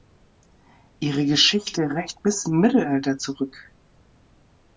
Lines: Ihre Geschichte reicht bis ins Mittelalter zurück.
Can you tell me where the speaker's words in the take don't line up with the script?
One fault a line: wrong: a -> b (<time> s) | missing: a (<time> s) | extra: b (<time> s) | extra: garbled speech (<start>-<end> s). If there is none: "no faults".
missing: ins (2.5 s)